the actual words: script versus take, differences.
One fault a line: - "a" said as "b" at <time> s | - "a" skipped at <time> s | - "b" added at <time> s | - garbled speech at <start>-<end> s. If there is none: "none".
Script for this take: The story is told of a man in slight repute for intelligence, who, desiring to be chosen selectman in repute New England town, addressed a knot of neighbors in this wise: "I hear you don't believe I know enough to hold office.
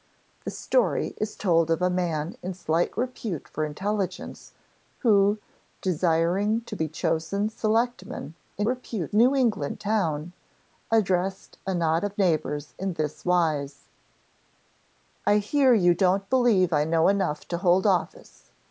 none